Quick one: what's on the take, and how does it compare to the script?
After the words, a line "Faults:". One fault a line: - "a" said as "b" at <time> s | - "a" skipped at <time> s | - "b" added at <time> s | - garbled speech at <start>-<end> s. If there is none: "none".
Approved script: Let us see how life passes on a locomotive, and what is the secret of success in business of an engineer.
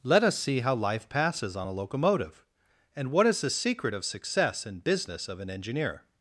Let us see how life passes on a locomotive, and what is the secret of success in business of an engineer.
Faults:
none